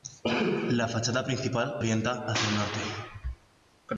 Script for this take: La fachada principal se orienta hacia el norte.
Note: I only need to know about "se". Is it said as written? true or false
false